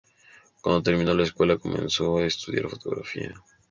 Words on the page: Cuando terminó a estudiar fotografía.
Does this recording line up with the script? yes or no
no